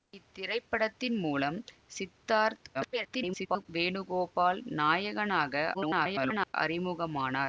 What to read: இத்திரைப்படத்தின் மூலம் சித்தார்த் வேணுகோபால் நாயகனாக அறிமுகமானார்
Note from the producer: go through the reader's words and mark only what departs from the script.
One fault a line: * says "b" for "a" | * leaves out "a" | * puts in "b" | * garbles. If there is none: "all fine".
* garbles
* garbles